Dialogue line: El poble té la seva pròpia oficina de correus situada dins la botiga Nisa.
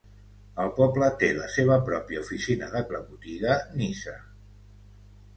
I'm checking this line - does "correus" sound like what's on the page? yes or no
no